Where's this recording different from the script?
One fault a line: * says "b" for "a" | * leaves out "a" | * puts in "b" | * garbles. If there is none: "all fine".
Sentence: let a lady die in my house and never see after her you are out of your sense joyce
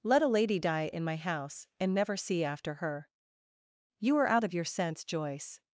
all fine